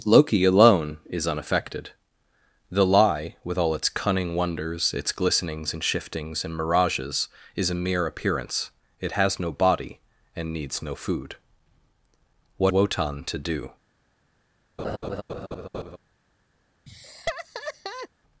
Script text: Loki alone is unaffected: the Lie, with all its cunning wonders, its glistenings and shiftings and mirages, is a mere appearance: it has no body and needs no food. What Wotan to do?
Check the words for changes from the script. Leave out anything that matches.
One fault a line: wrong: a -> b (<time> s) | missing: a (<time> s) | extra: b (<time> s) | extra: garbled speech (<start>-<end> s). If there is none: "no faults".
no faults